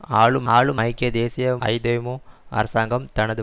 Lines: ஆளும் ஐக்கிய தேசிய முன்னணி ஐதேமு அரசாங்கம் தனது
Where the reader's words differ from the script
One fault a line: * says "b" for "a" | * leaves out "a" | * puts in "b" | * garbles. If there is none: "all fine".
* puts in "ஆளும்"
* leaves out "முன்னணி"